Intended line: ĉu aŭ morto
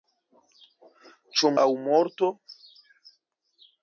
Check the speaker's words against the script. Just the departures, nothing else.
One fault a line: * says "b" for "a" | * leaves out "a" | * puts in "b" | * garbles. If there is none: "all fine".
all fine